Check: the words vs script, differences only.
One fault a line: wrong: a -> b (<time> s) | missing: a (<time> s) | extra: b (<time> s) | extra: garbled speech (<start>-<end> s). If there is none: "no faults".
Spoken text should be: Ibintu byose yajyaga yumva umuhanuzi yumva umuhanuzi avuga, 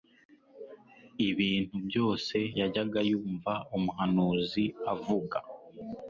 missing: yumva umuhanuzi (4.6 s)